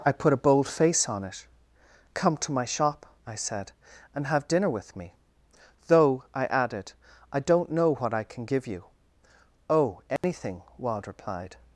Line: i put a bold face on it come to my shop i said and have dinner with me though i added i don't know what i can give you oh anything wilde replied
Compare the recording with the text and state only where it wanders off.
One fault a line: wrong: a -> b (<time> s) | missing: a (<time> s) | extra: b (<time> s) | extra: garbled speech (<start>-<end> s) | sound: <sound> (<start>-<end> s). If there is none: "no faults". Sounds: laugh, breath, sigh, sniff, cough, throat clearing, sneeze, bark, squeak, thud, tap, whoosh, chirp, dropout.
sound: dropout (10.2-10.2 s)